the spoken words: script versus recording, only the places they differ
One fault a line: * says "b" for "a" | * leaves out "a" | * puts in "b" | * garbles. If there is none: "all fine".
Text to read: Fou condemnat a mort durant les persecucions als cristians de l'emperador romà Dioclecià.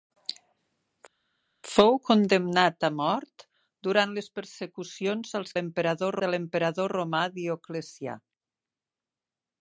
* says "l'emperador" for "cristians"